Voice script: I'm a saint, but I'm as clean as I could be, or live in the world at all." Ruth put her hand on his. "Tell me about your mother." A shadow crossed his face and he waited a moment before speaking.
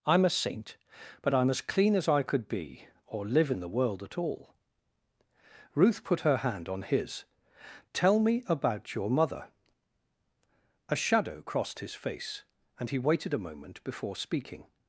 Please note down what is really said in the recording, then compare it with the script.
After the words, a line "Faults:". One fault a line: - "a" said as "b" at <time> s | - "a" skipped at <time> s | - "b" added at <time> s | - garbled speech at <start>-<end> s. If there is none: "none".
I'm a saint, but I'm as clean as I could be, or live in the world at all." Ruth put her hand on his. "Tell me about your mother." A shadow crossed his face and he waited a moment before speaking.
Faults:
none